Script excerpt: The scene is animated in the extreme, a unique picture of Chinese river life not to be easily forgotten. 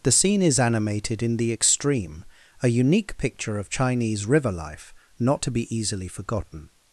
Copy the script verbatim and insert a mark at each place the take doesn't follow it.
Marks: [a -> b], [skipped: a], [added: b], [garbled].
The scene is animated in the extreme, a unique picture of Chinese river life not to be easily forgotten.